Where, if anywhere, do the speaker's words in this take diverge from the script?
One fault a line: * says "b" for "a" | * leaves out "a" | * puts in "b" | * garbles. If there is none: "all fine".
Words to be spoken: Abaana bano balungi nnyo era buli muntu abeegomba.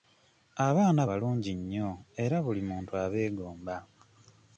* leaves out "bano"